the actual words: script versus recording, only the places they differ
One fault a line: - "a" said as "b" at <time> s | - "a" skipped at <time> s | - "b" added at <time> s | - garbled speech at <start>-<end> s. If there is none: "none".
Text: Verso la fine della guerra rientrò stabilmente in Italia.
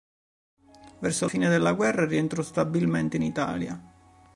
- "la" skipped at 1.3 s